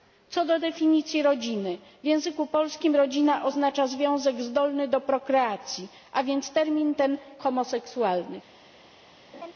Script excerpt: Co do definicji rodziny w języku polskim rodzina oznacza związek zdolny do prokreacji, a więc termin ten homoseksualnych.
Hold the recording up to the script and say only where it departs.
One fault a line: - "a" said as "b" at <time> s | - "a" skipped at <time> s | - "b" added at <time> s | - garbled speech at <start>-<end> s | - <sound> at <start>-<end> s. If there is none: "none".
- laugh at 9.3-9.5 s